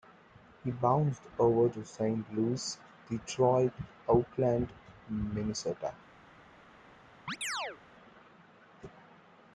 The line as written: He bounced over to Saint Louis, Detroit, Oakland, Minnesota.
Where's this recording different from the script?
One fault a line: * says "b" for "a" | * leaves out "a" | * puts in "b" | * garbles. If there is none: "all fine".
all fine